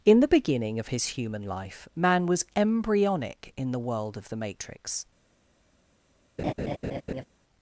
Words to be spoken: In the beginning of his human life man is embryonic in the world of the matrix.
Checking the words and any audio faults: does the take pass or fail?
fail